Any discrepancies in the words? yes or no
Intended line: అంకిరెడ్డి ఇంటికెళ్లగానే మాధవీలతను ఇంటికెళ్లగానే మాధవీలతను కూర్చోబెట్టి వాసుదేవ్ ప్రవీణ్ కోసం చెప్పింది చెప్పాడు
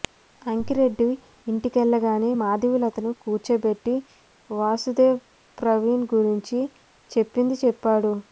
yes